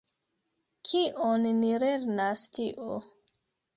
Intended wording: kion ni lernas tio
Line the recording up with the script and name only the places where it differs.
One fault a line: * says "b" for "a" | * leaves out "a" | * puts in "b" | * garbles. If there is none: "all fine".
all fine